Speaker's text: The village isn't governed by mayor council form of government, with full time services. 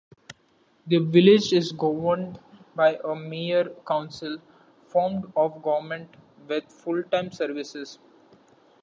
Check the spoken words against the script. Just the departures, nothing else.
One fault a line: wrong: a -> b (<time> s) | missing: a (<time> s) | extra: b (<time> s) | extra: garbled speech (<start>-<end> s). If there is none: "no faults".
wrong: isn't -> is (1.5 s)
extra: a (3.0 s)